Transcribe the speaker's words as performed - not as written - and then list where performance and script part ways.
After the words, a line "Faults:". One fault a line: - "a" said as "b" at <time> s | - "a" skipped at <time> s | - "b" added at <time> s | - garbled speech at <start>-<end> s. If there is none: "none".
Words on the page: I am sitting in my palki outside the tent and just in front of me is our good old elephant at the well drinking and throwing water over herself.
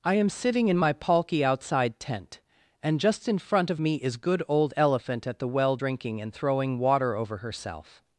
I am sitting in my palki outside tent and just in front of me is good old elephant at the well drinking and throwing water over herself.
Faults:
- "the" skipped at 2.0 s
- "our" skipped at 4.2 s